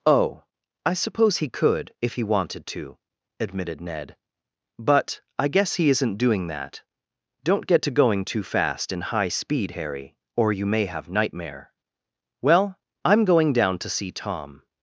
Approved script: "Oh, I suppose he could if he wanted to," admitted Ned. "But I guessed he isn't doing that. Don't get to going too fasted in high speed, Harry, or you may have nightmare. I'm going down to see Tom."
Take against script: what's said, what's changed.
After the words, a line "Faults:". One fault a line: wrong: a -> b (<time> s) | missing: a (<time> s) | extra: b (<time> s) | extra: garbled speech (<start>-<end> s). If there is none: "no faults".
"Oh, I suppose he could if he wanted to," admitted Ned. "But I guess he isn't doing that. Don't get to going too fast in high speed, Harry, or you may have nightmare. Well, I'm going down to see Tom."
Faults:
wrong: guessed -> guess (5.5 s)
wrong: fasted -> fast (8.4 s)
extra: Well (12.4 s)